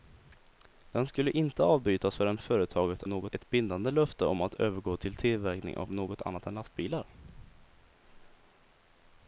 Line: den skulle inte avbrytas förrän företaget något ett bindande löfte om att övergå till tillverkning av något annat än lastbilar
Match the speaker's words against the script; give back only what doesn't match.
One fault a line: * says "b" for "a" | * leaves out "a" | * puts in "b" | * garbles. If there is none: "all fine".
all fine